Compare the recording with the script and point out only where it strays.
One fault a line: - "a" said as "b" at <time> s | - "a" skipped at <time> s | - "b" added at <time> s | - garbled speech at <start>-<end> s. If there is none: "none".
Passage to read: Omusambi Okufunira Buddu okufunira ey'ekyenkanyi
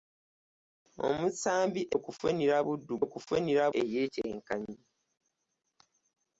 none